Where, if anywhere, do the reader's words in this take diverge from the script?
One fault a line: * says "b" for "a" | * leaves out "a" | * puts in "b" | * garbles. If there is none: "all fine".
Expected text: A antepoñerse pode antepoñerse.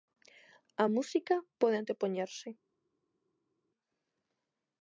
* says "música" for "antepoñerse"